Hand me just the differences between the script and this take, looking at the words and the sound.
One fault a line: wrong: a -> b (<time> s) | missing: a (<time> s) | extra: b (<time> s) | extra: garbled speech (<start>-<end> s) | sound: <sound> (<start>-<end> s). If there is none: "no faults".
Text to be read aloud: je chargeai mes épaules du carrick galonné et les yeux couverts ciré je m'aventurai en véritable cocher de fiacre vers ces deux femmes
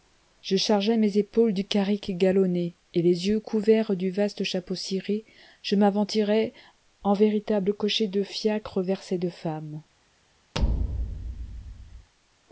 extra: du vaste chapeau (4.0 s)
sound: thud (10.5-12.1 s)